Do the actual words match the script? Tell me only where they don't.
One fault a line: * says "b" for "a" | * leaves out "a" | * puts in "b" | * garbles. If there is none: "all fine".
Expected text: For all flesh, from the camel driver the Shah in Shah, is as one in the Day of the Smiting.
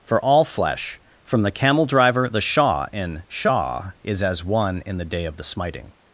all fine